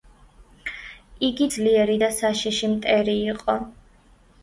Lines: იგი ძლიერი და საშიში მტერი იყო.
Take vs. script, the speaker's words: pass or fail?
pass